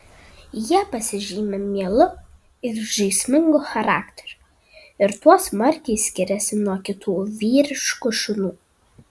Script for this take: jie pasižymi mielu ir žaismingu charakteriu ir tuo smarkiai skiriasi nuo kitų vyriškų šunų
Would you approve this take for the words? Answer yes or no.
yes